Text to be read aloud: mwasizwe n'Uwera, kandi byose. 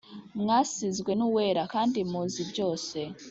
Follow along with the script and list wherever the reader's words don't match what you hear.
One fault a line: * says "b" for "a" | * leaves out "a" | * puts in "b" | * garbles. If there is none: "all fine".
* puts in "muzi"